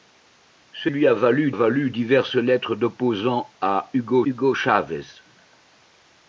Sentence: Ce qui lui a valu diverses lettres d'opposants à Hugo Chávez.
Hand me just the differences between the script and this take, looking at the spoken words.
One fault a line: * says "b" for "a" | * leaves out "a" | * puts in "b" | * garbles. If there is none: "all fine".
* leaves out "qui"
* puts in "valu"
* puts in "Hugo"